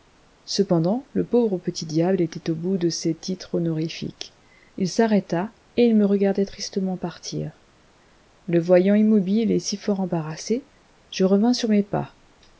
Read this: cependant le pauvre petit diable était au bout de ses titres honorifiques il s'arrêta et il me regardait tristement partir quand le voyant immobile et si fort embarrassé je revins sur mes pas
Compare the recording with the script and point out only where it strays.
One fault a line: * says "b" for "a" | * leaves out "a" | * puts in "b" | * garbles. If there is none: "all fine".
* leaves out "quand"